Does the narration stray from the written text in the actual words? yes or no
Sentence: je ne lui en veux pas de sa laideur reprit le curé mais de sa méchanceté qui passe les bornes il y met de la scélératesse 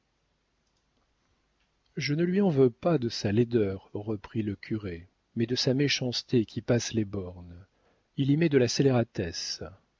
no